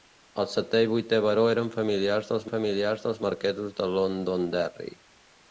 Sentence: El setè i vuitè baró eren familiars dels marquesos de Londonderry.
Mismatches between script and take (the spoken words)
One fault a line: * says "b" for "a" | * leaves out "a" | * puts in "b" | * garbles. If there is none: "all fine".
* puts in "familiars dels"